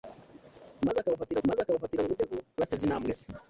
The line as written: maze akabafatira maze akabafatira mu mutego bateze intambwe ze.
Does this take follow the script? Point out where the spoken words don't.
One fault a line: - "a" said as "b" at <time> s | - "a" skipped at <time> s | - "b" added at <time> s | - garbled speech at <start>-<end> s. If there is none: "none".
none